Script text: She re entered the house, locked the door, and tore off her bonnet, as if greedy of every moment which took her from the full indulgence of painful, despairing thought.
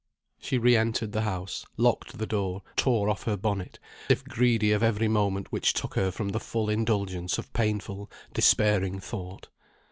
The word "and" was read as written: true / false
false